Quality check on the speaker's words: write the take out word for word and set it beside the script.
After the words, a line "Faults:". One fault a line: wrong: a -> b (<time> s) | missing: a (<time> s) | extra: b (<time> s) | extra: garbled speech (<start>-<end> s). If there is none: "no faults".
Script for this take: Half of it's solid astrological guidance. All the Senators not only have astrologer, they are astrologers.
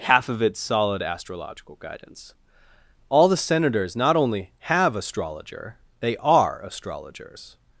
Half of it's solid astrological guidance. All the Senators not only have astrologer, they are astrologers.
Faults:
no faults